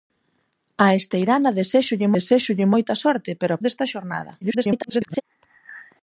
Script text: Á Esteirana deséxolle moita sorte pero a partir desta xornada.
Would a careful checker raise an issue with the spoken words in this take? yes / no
yes